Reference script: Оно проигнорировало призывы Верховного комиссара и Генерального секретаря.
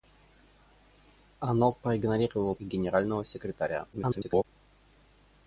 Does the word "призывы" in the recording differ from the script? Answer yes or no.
yes